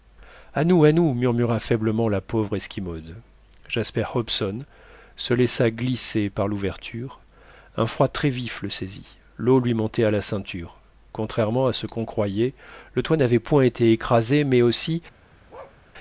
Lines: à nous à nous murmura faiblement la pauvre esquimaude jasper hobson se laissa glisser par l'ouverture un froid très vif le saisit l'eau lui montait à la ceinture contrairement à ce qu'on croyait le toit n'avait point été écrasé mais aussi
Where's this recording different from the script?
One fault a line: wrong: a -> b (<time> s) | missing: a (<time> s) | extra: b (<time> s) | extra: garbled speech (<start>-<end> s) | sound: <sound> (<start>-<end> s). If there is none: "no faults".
sound: bark (15.5-15.8 s)